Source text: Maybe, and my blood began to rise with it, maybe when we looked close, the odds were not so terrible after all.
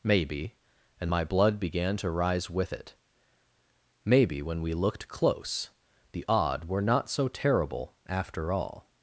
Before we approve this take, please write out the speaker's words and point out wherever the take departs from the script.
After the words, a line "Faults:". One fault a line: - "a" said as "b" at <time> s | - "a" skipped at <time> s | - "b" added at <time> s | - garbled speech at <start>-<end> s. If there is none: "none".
Maybe, and my blood began to rise with it, maybe when we looked close, the odd were not so terrible after all.
Faults:
- "odds" said as "odd" at 6.3 s